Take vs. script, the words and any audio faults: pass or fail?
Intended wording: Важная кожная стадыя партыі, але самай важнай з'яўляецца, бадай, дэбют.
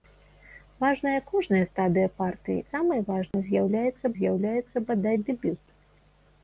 fail